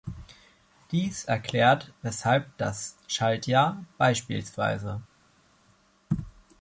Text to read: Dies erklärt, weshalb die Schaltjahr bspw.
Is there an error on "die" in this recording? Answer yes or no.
yes